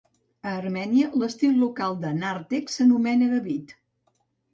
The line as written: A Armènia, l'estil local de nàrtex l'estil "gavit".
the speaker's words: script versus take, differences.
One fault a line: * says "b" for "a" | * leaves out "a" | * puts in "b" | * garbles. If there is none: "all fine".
* says "s'anomena" for "l'estil"